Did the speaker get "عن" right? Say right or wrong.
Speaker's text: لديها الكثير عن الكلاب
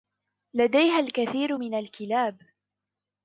wrong